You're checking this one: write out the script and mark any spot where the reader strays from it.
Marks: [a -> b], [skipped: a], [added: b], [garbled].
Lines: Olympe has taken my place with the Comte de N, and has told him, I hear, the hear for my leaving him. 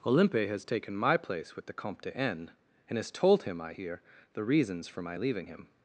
Olympe has taken my place with the Comte de N, and has told him, I hear, the [hear -> reasons] for my leaving him.